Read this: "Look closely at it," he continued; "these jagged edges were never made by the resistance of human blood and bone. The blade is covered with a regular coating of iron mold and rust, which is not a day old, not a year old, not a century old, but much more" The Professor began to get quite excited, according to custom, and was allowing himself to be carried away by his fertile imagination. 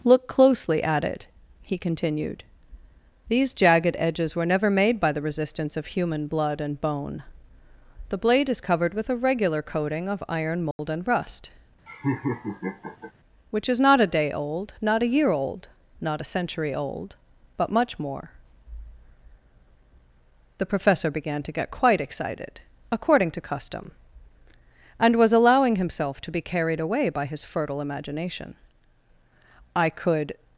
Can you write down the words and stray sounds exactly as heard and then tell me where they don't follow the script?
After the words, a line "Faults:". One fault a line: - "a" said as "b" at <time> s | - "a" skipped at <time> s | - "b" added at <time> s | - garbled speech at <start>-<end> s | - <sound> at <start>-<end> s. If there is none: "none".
"Look closely at it," he continued; "these jagged edges were never made by the resistance of human blood and bone. The blade is covered with a regular coating of iron mold and rust, which is not a day old, not a year old, not a century old, but much more" The Professor began to get quite excited, according to custom, and was allowing himself to be carried away by his fertile imagination. I could
Faults:
- dropout at 10.7-10.8 s
- laugh at 11.9-13.1 s
- "I could" added at 29.8 s